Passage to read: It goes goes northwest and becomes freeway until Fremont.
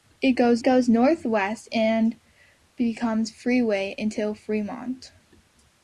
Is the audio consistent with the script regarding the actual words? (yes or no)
yes